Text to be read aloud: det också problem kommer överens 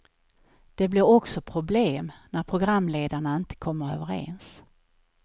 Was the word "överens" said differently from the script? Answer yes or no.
no